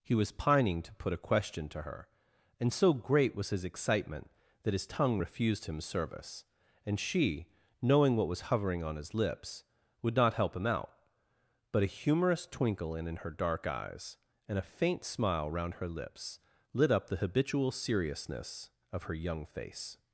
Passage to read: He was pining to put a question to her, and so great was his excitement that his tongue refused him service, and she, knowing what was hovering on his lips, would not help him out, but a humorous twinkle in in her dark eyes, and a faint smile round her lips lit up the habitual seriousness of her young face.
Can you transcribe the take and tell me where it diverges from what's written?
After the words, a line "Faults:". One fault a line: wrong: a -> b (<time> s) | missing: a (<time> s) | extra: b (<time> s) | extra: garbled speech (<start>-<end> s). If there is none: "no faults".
He was pining to put a question to her, and so great was his excitement that his tongue refused him service, and she, knowing what was hovering on his lips, would not help him out, but a humorous twinkle in in her dark eyes, and a faint smile round her lips lit up the habitual seriousness of her young face.
Faults:
no faults